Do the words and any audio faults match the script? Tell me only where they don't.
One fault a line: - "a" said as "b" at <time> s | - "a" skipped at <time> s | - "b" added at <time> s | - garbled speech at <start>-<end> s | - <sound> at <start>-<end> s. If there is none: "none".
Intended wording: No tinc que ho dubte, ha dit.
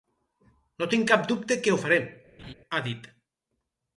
- "cap dubte" added at 1.1 s
- "dubte" said as "farem" at 1.9 s
- laugh at 2.4-2.5 s